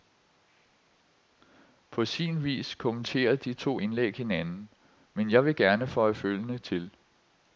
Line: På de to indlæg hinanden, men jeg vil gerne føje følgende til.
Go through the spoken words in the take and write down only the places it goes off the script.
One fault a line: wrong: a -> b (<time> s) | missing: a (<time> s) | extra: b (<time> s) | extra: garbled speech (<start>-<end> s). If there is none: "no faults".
extra: sin vis kommenterer (2.0 s)